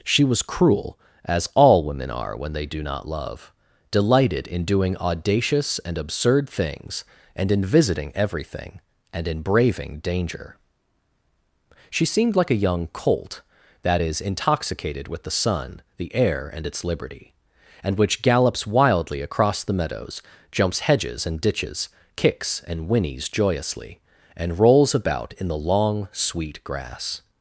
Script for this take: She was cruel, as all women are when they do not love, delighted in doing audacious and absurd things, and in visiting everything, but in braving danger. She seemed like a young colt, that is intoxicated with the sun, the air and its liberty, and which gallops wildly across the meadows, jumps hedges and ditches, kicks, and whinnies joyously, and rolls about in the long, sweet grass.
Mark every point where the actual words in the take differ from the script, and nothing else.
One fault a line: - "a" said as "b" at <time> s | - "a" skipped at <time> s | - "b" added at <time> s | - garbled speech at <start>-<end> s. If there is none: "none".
- "but" said as "and" at 9.1 s